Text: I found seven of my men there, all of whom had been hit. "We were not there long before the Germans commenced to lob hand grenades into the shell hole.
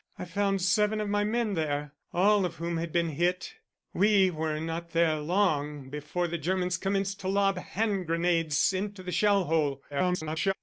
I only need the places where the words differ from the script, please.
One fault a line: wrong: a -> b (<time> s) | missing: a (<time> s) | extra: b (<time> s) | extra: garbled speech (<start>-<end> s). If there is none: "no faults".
extra: garbled speech (9.9-10.5 s)